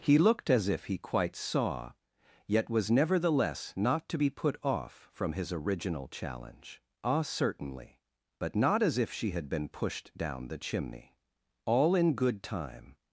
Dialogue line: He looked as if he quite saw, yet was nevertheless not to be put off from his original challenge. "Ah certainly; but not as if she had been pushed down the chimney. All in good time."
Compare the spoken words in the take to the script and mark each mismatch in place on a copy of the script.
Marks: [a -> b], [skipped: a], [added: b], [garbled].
He looked as if he quite saw, yet was nevertheless not to be put off from his original challenge. "Ah certainly; but not as if she had been pushed down the chimney. All in good time."